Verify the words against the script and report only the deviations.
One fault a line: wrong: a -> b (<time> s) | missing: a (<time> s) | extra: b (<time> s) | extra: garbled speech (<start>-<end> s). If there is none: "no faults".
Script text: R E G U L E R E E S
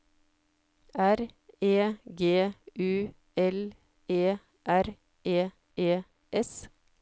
no faults